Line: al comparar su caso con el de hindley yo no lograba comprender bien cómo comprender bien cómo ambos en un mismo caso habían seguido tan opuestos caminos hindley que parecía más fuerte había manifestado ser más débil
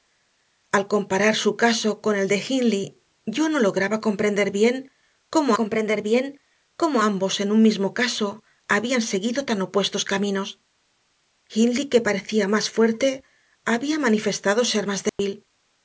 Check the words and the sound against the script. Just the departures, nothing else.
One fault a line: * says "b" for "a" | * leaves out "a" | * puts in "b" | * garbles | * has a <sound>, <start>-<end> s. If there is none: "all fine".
* has a dropout, 15.1-15.2 s